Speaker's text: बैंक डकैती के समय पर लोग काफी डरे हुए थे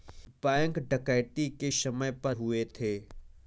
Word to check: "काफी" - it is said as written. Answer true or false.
false